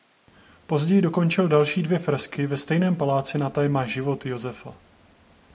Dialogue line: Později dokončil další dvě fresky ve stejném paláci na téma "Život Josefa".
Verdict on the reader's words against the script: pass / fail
pass